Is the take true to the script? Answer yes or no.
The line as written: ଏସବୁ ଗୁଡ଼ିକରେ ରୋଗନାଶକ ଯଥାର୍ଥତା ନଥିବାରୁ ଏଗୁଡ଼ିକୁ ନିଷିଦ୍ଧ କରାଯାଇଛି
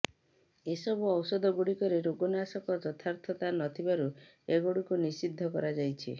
no